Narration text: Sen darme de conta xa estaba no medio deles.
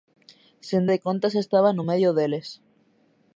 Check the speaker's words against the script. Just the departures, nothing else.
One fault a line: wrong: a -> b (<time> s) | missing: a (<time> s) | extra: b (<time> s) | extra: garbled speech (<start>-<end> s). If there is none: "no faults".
missing: darme (0.8 s)